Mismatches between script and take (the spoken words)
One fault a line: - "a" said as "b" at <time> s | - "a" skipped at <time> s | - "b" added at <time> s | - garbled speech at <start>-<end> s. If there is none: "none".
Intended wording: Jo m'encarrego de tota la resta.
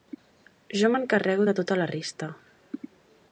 none